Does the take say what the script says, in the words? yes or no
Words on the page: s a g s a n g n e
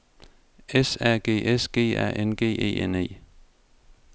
no